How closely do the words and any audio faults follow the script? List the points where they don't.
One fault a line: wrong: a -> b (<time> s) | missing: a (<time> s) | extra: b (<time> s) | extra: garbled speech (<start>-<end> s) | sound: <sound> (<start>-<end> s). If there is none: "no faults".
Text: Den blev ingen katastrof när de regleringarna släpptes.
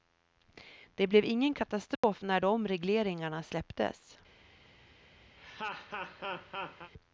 wrong: Den -> Det (0.9 s)
sound: dropout (2.0-2.0 s)
sound: laugh (5.4-6.9 s)